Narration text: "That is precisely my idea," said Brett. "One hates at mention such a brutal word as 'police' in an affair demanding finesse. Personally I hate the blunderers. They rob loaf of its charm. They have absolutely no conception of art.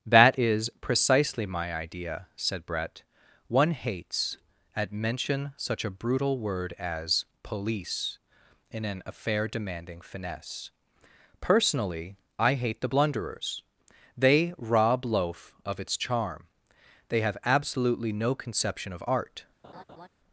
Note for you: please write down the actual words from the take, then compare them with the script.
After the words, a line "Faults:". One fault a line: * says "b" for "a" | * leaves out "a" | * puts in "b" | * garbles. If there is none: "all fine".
"That is precisely my idea," said Brett. "One hates at mention such a brutal word as 'police' in an affair demanding finesse. Personally I hate the blunderers. They rob loaf of its charm. They have absolutely no conception of art.
Faults:
all fine